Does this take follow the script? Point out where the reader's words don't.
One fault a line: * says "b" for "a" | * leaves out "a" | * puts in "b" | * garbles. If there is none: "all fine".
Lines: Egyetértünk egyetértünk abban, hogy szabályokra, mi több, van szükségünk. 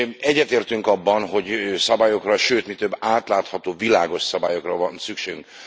* leaves out "egyetértünk"
* puts in "sőt"
* puts in "átlátható világos szabályokra"